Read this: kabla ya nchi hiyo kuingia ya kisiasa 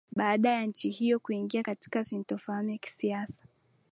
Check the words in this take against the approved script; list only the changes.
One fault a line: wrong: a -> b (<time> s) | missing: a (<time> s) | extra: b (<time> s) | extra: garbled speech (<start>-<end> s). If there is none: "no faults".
wrong: kabla -> baada (0.1 s)
extra: katika sintofahamu (1.6 s)